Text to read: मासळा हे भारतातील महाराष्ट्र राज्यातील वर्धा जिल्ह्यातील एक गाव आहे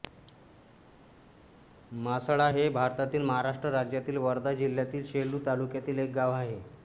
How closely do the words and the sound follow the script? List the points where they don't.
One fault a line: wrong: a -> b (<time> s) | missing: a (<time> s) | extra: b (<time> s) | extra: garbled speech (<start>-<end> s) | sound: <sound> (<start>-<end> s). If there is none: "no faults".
extra: सेलू तालुक्यातील (5.1 s)